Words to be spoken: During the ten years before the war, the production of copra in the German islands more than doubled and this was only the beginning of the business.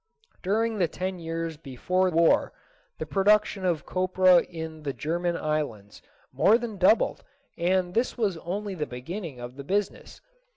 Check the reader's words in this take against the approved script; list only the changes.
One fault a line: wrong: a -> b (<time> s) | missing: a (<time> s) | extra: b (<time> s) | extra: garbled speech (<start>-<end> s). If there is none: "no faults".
missing: the (2.1 s)